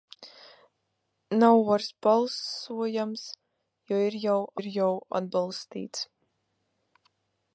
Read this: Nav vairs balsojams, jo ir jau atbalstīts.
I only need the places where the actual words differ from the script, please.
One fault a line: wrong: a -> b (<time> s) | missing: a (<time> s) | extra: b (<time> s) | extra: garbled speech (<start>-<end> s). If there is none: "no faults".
extra: ir jau (4.6 s)